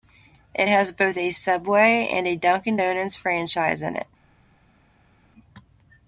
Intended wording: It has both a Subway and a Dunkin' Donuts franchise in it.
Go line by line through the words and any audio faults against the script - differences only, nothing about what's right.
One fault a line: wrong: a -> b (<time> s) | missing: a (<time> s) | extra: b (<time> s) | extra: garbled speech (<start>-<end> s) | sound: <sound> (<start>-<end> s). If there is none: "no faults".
no faults